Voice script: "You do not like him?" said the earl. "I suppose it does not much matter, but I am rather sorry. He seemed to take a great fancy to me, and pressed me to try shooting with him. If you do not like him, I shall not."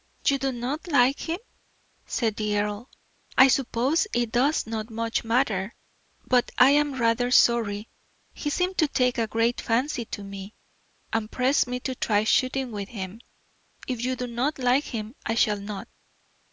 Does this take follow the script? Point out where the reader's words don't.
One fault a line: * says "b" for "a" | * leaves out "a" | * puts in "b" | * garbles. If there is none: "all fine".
all fine